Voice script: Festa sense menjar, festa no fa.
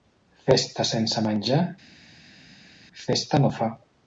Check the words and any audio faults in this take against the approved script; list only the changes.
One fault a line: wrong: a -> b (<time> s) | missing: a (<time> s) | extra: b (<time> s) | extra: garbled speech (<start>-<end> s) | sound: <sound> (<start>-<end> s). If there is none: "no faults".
no faults